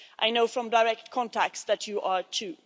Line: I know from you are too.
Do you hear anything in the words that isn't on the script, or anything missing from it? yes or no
yes